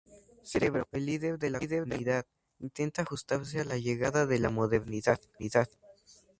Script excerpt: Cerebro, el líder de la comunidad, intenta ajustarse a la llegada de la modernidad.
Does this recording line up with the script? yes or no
yes